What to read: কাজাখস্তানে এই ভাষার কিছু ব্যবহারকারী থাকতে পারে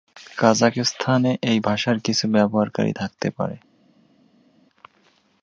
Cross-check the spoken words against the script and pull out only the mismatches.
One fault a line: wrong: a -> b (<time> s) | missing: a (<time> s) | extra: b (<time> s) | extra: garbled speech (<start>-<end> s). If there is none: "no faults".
no faults